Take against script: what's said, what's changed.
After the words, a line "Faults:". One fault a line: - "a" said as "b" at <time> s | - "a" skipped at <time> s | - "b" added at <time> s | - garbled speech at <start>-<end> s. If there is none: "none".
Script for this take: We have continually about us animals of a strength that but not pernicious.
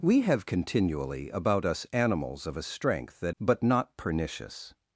We have continually about us animals of a strength that but not pernicious.
Faults:
none